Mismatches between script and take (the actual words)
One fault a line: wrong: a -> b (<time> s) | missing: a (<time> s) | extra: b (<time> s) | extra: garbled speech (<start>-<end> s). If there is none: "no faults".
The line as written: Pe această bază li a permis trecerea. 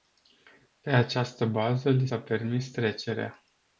no faults